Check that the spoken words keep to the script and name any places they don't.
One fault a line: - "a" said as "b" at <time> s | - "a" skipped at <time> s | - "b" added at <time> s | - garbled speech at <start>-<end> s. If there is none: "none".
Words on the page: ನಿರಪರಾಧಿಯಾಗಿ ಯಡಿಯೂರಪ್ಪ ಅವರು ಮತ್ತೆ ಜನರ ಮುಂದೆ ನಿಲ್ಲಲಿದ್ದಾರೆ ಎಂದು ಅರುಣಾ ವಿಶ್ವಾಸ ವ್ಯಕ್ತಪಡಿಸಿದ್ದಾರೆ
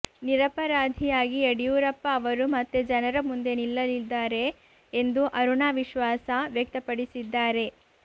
none